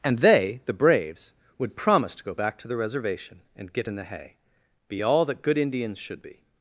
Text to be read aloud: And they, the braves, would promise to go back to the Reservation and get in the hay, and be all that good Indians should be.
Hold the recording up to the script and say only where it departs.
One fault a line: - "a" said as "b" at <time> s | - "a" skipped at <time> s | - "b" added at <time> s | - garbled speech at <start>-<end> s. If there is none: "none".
- "and" skipped at 4.4 s